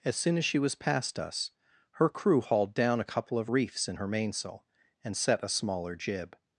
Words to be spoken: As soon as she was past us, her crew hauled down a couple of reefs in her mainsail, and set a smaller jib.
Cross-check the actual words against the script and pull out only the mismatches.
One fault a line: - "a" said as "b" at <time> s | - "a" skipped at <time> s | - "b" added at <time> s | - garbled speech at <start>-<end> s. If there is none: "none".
none